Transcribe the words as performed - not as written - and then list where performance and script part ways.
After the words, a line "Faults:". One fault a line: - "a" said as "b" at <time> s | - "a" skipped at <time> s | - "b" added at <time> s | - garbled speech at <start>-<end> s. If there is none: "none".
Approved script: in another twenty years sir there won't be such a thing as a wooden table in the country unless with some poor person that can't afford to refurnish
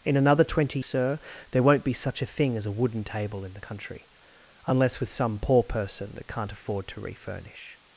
in another twenty sir there won't be such a thing as a wooden table in the country unless with some poor person that can't afford to refurnish
Faults:
- "years" skipped at 0.8 s